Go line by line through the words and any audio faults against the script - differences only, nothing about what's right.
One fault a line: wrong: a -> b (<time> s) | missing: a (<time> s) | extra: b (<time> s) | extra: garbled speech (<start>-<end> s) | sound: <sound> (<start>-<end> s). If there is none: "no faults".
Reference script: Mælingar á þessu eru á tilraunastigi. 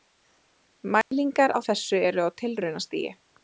sound: dropout (1.0-1.1 s)